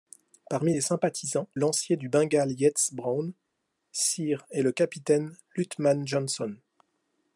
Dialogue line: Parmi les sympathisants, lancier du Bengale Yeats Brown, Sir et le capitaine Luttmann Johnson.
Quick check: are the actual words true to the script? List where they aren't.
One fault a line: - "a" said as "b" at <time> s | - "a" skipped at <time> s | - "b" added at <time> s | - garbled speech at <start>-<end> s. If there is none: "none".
none